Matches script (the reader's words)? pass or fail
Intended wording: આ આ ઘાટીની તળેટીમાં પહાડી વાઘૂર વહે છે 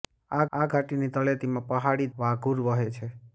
pass